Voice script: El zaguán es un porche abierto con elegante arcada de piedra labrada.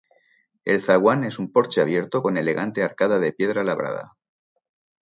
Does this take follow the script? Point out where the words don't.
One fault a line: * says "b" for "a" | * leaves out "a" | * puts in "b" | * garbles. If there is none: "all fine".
all fine